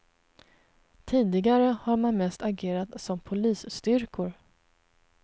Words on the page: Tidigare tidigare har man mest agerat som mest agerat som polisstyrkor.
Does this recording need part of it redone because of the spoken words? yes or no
yes